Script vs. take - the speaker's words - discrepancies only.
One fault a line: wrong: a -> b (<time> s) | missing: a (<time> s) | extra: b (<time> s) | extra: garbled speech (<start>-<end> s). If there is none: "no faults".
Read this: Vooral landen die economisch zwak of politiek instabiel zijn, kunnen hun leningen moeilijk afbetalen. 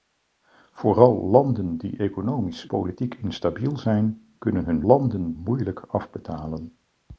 missing: zwak of (2.7 s)
wrong: leningen -> landen (4.8 s)